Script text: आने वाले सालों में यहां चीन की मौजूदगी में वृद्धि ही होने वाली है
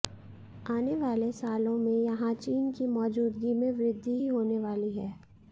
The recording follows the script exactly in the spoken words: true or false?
true